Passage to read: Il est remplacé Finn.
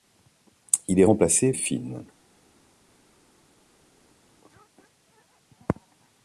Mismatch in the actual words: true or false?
false